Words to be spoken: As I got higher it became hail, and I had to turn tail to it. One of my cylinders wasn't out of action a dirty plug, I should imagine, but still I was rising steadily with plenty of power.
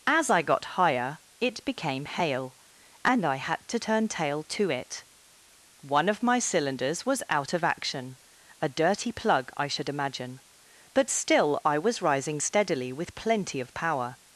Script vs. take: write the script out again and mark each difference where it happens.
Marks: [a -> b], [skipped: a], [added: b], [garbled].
As I got higher it became hail, and I had to turn tail to it. One of my cylinders [wasn't -> was] out of action a dirty plug, I should imagine, but still I was rising steadily with plenty of power.